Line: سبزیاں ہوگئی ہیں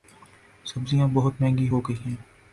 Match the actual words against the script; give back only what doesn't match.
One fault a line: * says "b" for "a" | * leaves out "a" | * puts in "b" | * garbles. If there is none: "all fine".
* puts in "بہت مہنگی"